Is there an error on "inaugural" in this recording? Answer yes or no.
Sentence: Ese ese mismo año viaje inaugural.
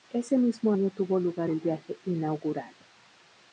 no